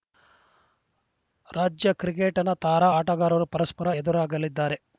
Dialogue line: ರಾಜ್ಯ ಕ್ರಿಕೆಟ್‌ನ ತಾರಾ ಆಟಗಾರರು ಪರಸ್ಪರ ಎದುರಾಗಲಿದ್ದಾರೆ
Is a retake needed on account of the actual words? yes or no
no